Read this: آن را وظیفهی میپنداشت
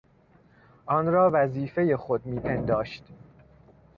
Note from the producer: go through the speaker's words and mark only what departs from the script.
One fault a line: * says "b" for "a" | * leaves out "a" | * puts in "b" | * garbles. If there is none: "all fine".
* puts in "خود"